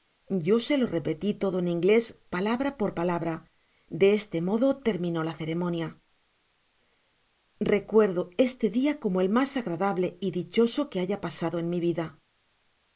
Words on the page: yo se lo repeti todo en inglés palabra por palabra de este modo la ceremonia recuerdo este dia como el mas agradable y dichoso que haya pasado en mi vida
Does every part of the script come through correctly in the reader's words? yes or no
no